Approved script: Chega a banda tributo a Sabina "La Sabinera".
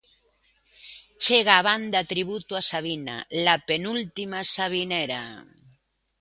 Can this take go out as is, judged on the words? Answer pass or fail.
fail